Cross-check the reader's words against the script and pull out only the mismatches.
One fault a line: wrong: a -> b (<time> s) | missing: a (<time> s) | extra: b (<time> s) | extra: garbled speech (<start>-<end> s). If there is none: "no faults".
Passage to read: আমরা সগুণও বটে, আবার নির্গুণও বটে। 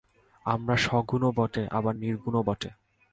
no faults